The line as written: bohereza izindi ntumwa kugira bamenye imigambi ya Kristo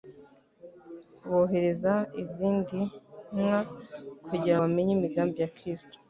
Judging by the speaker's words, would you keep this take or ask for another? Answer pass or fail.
pass